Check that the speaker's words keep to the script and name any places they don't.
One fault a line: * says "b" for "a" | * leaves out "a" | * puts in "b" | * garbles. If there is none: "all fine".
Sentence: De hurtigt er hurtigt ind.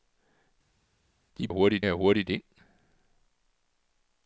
all fine